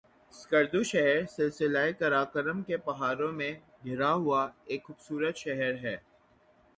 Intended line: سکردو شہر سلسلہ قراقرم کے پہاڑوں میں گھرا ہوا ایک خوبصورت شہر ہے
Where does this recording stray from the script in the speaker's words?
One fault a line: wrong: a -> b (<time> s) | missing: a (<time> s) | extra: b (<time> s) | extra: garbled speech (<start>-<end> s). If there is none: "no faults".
no faults